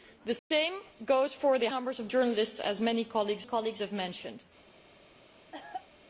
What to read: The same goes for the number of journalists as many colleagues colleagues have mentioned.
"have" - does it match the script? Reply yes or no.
yes